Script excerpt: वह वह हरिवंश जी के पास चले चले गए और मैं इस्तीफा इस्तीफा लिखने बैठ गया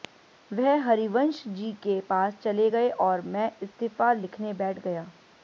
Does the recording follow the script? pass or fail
fail